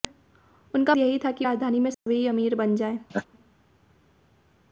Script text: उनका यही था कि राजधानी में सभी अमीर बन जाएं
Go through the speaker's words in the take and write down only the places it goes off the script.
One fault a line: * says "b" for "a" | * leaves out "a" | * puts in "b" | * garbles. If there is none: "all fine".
all fine